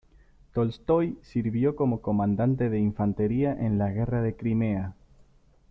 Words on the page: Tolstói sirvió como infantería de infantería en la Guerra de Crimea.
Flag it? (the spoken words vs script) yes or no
yes